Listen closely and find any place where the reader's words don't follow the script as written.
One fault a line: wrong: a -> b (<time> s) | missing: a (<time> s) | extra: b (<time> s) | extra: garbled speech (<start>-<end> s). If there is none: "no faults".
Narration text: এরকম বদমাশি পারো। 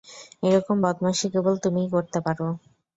extra: কেবল তুমিই করতে (1.3 s)